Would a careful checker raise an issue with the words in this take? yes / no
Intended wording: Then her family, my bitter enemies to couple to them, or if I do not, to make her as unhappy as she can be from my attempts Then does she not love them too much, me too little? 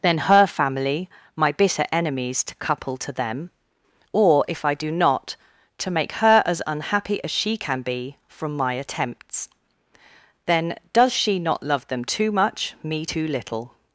no